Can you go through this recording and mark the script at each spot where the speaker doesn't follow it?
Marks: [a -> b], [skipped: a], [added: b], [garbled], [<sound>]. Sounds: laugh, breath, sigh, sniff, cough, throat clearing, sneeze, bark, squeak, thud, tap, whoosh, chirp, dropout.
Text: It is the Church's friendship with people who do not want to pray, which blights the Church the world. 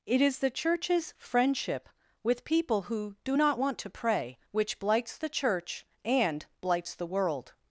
It is the Church's friendship with people who do not want to pray, which blights the Church [added: and blights] the world.